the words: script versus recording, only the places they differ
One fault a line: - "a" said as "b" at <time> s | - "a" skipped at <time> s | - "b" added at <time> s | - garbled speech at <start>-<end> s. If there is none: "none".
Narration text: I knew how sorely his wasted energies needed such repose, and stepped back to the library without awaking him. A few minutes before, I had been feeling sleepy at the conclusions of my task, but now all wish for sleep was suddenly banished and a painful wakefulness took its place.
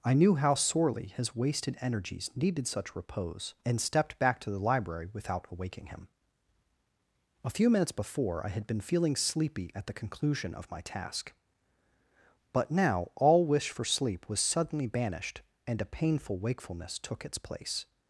- "conclusions" said as "conclusion" at 9.9 s